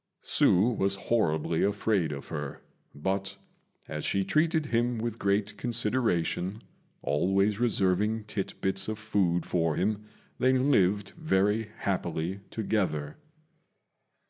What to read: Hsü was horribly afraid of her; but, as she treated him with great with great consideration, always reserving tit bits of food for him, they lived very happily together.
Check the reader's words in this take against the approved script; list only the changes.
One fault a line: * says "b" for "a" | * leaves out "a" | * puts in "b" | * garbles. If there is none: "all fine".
* leaves out "with great"